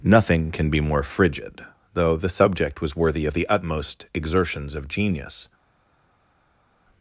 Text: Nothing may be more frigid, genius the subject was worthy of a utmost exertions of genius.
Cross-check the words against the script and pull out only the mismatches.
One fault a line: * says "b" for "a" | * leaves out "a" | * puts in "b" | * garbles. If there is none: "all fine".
* says "can" for "may"
* says "though" for "genius"
* says "the" for "a"